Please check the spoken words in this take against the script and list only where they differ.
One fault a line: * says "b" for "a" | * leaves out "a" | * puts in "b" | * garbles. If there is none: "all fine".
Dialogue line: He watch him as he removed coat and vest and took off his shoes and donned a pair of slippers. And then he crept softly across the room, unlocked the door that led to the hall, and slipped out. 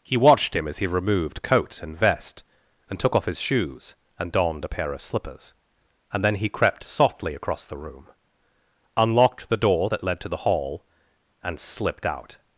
* says "watched" for "watch"